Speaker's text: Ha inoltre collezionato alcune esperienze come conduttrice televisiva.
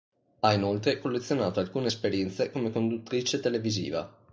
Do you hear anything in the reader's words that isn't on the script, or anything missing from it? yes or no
no